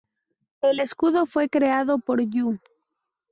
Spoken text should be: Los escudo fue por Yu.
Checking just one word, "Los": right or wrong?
wrong